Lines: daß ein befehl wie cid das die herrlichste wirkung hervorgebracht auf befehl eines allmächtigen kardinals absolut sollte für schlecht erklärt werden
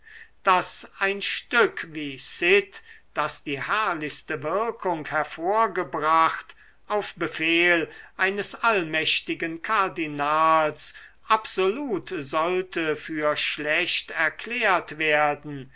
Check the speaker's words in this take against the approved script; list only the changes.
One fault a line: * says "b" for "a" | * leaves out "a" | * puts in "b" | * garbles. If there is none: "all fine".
* says "stück" for "befehl"